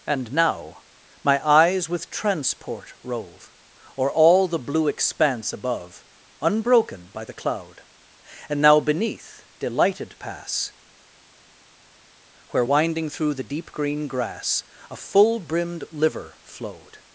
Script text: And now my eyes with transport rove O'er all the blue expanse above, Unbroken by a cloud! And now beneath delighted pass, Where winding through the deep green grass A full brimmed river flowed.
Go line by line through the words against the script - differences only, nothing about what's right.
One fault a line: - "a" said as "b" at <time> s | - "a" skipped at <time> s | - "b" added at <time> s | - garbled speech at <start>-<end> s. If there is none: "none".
- "a" said as "the" at 7.2 s
- "river" said as "liver" at 15.9 s